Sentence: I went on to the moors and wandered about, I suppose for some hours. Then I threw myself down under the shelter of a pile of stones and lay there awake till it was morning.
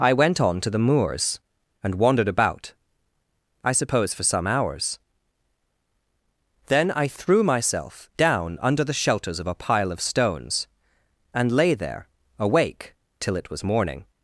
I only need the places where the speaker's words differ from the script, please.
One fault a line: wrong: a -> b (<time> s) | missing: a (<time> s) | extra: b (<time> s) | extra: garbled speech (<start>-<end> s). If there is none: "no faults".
wrong: shelter -> shelters (8.9 s)